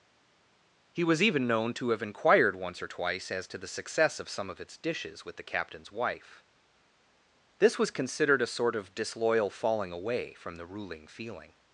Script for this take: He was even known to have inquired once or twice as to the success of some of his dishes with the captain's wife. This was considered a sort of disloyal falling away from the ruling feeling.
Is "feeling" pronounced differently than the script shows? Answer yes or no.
no